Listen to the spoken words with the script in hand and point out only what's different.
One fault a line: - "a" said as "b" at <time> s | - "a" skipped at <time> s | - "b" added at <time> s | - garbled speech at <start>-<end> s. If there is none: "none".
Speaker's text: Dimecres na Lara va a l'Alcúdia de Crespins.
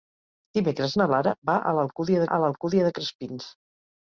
- "a l'Alcúdia" added at 2.2 s